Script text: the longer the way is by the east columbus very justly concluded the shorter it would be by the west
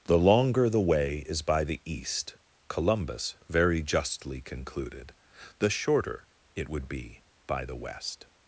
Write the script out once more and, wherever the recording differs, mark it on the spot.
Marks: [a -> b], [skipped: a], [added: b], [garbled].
the longer the way is by the east columbus very justly concluded the shorter it would be by the west